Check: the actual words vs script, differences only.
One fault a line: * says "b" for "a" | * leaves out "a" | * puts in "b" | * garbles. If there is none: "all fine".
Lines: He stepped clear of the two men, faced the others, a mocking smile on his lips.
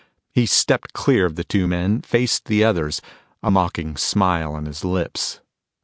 all fine